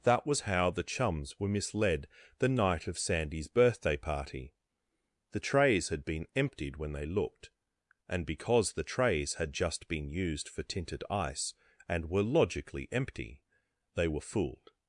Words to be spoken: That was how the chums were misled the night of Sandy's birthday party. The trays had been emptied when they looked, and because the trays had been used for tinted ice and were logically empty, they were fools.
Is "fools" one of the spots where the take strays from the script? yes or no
yes